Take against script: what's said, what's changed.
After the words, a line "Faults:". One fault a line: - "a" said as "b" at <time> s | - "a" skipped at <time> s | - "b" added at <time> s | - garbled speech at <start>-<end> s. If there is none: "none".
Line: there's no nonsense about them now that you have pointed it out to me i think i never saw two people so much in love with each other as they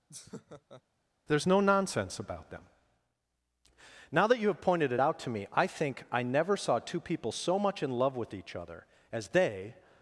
there's no nonsense about them now that you have pointed it out to me i think i never saw two people so much in love with each other as they
Faults:
none